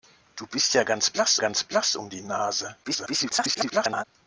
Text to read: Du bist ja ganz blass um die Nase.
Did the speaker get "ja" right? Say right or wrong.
right